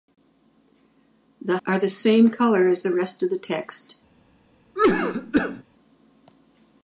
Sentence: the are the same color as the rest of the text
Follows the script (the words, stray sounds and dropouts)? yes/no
no